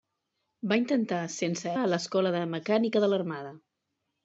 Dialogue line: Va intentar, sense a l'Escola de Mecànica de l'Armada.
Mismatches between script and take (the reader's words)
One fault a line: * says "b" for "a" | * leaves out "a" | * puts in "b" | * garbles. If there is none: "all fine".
all fine